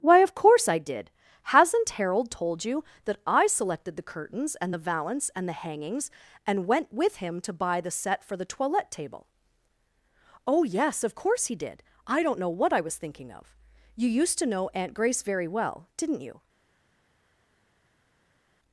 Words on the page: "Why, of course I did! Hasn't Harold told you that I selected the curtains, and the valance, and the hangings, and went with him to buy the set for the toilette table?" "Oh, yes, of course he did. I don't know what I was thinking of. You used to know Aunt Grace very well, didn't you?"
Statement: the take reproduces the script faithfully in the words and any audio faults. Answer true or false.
true